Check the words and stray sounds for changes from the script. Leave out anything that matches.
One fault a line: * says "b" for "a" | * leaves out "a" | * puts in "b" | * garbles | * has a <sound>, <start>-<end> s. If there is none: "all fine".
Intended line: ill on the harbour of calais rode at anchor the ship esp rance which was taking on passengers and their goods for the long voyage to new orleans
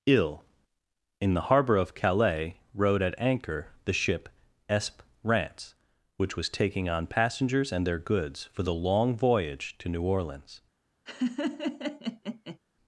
* says "in" for "on"
* has a laugh, 11.1-12.6 s